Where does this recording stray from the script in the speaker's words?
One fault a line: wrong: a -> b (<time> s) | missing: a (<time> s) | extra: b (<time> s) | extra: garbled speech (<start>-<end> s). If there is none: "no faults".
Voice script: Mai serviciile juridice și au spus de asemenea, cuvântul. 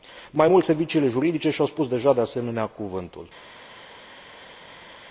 extra: mult (0.4 s)
extra: deja (1.9 s)